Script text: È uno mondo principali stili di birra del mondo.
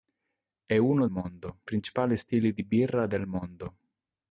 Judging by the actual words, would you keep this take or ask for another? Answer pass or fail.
pass